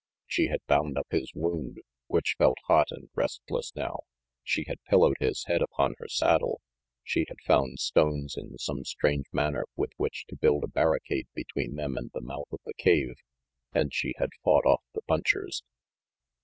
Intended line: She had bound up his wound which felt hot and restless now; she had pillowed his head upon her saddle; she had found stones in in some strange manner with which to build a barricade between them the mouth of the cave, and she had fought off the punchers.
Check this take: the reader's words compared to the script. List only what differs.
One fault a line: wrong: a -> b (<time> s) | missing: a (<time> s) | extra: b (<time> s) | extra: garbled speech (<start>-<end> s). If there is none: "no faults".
missing: in (8.6 s)
extra: and (12.0 s)